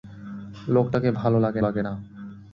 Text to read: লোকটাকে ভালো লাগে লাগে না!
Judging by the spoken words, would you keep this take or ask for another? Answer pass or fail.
pass